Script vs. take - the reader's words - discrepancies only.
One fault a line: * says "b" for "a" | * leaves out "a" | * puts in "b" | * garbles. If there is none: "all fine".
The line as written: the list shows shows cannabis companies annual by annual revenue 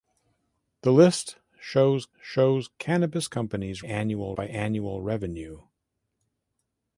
all fine